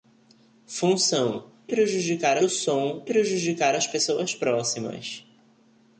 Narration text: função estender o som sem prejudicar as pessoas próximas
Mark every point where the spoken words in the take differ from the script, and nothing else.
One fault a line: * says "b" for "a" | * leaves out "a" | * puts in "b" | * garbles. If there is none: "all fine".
* says "prejudicar" for "estender"
* leaves out "sem"